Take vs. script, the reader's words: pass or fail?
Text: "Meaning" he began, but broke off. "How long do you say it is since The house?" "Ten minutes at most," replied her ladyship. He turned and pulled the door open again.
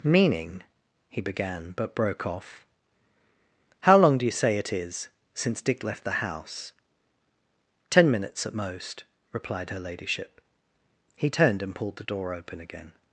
fail